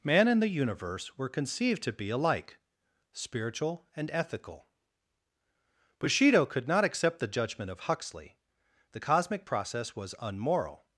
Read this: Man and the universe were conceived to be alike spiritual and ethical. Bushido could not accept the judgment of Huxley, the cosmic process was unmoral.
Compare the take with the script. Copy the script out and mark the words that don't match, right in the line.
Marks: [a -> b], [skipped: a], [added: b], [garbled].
Man and the universe were conceived to be alike spiritual and ethical. Bushido could not accept the judgment of Huxley, the cosmic process was unmoral.